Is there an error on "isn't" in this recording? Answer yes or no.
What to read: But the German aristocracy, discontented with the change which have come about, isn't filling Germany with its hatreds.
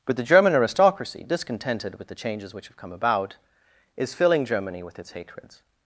yes